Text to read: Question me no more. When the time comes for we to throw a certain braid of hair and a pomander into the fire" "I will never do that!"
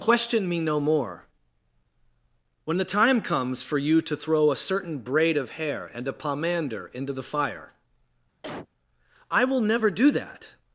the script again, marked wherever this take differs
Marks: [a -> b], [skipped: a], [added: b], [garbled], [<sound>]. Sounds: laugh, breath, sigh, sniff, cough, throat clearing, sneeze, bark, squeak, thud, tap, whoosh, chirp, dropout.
Question me no more. When the time comes for [we -> you] to throw a certain braid of hair and a pomander into the fire" [cough] "I will never do that!"